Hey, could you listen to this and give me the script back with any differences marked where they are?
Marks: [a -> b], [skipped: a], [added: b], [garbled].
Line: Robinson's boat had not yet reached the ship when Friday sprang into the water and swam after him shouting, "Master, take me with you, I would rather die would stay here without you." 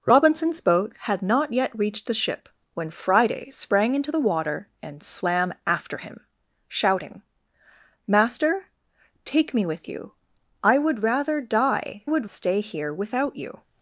Robinson's boat had not yet reached the ship when Friday sprang into the water and swam after him shouting, "Master, take me with you, I would rather die would stay here without you."